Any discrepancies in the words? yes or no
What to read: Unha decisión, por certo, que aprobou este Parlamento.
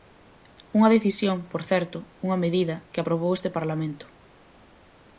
yes